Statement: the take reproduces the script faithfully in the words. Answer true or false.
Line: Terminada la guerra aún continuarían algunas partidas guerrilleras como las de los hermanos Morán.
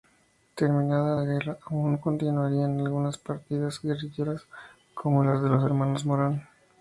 true